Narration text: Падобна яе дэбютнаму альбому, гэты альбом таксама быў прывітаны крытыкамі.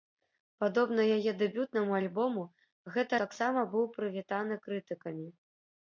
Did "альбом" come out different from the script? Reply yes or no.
yes